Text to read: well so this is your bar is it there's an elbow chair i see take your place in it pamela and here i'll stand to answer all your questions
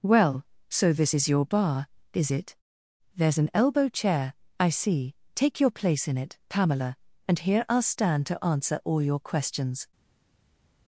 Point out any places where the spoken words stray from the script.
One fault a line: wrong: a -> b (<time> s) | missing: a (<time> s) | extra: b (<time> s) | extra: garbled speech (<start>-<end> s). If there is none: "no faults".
no faults